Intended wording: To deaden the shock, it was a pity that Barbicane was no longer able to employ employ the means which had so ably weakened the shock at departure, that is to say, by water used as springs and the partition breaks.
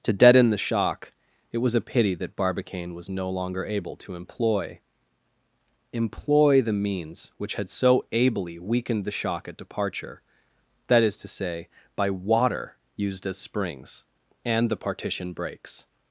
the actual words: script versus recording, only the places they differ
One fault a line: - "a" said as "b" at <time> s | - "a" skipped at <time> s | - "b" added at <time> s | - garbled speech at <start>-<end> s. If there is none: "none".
none